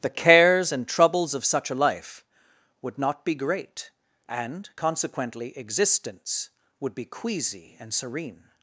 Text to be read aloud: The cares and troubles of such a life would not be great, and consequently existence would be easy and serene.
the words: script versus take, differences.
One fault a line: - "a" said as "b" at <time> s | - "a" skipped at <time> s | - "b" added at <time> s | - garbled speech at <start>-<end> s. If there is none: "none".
- "easy" said as "queasy" at 7.0 s